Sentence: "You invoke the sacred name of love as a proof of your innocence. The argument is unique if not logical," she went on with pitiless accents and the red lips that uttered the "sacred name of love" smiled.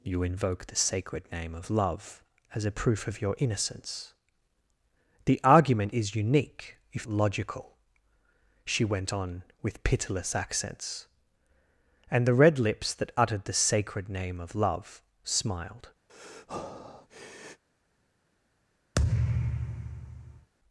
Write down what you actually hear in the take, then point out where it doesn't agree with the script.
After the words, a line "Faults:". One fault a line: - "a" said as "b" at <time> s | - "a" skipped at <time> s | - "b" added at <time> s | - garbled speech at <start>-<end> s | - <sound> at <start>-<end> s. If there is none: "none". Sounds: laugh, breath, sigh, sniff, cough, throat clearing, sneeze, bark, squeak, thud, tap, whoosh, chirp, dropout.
"You invoke the sacred name of love as a proof of your innocence. The argument is unique if logical," she went on with pitiless accents and the red lips that uttered the "sacred name of love" smiled.
Faults:
- "not" skipped at 7.1 s
- breath at 16.1-17.6 s
- thud at 18.9-20.5 s